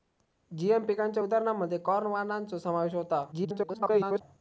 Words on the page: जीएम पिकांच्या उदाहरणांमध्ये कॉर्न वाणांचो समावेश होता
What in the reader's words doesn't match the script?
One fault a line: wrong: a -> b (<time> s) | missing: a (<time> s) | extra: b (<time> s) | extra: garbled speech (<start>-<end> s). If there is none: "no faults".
extra: garbled speech (3.3-4.2 s)